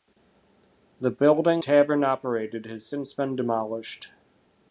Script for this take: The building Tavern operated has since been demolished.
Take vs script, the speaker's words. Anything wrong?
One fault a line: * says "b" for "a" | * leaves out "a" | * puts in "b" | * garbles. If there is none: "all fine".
all fine